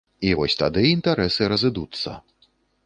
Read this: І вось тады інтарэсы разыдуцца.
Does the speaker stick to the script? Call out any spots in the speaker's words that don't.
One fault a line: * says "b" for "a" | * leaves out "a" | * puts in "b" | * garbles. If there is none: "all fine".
all fine